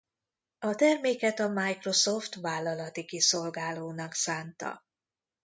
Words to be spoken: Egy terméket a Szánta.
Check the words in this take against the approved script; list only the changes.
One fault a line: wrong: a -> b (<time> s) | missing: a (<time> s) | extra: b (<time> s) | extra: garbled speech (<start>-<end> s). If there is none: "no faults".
wrong: Egy -> A (0.6 s)
extra: Microsoft vállalati kiszolgálónak (1.5 s)